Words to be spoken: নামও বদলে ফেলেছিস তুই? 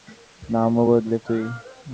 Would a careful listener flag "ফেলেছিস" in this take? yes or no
yes